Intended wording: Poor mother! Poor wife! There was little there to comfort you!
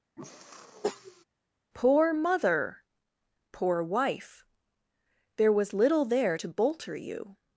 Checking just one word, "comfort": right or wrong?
wrong